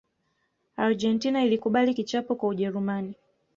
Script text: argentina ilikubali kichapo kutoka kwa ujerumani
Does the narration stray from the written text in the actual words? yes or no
yes